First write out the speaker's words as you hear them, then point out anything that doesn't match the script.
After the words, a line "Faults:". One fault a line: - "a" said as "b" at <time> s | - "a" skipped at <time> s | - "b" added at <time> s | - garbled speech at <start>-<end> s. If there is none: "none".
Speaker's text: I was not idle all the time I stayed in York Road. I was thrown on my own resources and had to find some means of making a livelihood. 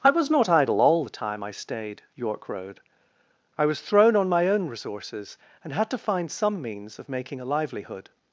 I was not idle all the time I stayed York Road. I was thrown on my own resources and had to find some means of making a livelihood.
Faults:
- "in" skipped at 2.0 s